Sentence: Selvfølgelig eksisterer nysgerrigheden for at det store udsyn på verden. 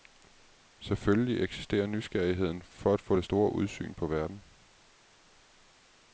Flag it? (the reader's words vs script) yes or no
yes